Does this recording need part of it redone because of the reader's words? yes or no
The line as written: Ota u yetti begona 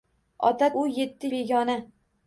no